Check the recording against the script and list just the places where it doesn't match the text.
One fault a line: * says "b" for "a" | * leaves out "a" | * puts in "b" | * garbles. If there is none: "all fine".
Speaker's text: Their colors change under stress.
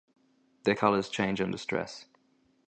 all fine